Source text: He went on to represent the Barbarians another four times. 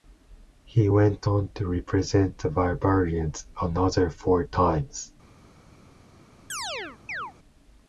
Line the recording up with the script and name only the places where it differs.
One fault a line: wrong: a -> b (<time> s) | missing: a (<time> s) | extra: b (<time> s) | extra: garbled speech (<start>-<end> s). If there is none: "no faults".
no faults